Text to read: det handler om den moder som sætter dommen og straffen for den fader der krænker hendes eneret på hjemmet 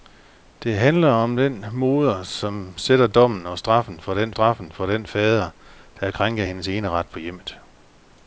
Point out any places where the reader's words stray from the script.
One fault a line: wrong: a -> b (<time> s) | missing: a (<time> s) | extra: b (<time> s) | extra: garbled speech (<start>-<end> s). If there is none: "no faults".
extra: straffen for den (4.3 s)